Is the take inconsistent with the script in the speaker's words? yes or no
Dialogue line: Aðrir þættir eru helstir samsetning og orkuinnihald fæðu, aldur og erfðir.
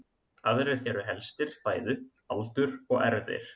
yes